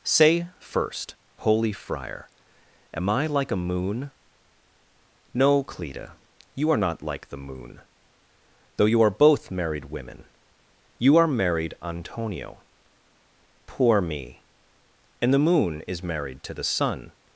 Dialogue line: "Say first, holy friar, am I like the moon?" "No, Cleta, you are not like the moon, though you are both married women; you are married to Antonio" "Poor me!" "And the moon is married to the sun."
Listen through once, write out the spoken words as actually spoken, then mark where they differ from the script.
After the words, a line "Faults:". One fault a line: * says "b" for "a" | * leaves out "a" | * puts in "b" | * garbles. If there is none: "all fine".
"Say first, holy friar, am I like a moon?" "No, Cleta, you are not like the moon, though you are both married women; you are married Antonio" "Poor me!" "And the moon is married to the sun."
Faults:
* says "a" for "the"
* leaves out "to"